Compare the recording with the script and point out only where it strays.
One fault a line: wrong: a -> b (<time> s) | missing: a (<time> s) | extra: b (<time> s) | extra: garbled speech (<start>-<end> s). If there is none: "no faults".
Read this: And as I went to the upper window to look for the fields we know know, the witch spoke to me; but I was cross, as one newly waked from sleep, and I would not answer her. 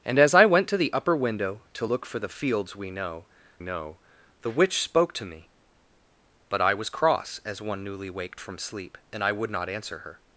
no faults